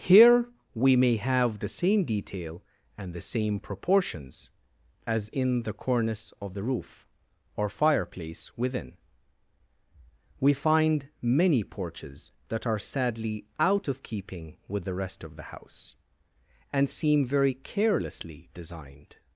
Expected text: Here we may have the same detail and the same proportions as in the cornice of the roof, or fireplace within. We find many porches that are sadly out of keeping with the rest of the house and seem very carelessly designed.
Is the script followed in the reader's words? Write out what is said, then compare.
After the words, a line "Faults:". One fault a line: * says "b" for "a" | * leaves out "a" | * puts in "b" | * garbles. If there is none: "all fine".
Here we may have the same detail and the same proportions as in the cornice of the roof, or fireplace within. We find many porches that are sadly out of keeping with the rest of the house and seem very carelessly designed.
Faults:
all fine